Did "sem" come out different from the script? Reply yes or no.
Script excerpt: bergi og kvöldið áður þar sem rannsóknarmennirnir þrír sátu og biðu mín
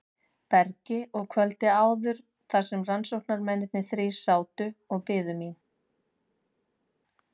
no